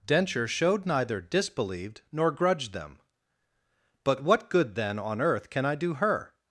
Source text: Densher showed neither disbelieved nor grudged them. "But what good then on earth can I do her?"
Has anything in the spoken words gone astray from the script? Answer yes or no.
no